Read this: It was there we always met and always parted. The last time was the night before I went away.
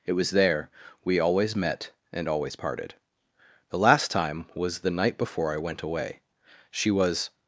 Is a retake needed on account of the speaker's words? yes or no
yes